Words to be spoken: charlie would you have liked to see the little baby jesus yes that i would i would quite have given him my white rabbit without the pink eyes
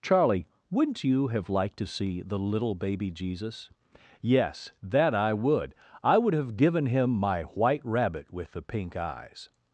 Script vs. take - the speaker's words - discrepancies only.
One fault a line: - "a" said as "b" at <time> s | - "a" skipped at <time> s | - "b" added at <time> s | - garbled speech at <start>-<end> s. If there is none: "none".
- "would" said as "wouldn't" at 0.7 s
- "quite" skipped at 6.3 s
- "without" said as "with" at 8.3 s